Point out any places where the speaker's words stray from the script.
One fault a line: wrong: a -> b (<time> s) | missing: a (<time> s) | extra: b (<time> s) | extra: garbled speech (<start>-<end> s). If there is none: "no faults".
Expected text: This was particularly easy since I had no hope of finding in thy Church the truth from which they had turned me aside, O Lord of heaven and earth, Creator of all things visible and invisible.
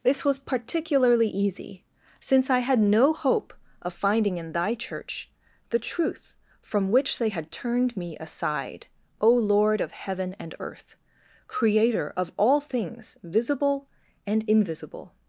no faults